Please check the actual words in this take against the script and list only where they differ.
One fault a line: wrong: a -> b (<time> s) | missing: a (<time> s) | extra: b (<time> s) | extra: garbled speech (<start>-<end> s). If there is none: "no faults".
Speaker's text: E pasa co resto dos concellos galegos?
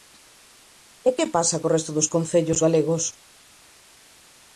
extra: que (1.2 s)